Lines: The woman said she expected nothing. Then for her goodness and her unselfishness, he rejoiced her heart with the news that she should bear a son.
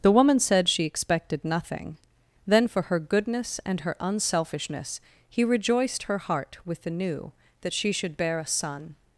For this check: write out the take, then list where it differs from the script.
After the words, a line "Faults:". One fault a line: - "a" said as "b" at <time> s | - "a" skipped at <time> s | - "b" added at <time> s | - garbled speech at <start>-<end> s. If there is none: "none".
The woman said she expected nothing. Then for her goodness and her unselfishness, he rejoiced her heart with the new that she should bear a son.
Faults:
- "news" said as "new" at 6.9 s